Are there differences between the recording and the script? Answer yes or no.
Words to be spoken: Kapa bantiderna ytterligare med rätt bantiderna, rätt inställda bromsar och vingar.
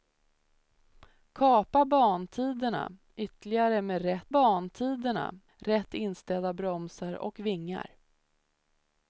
no